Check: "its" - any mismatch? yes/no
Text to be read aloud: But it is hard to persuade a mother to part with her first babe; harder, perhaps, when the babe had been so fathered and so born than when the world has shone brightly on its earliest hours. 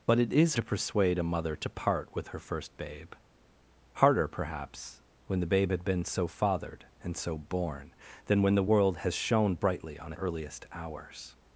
yes